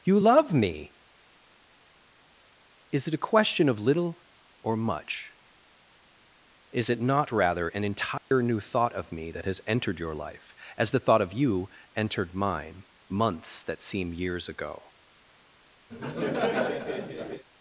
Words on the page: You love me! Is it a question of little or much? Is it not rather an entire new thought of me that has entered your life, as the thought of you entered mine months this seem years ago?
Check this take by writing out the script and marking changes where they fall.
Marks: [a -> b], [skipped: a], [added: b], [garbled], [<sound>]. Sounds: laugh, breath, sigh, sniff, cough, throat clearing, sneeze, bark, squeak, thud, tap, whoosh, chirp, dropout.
You love me! Is it a question of little or much? Is it not rather an entire [dropout] new thought of me that has entered your life, as the thought of you entered mine months [this -> that] seem years ago? [laugh]